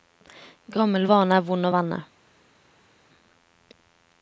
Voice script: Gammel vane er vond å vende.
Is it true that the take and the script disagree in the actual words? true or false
false